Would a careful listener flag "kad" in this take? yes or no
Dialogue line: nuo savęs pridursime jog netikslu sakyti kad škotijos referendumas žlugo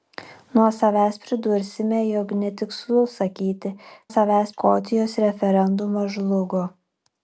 yes